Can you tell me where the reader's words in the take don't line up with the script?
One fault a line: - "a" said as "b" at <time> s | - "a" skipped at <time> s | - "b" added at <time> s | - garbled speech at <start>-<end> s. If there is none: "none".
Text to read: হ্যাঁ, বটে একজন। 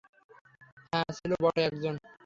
- "ছিল" added at 1.2 s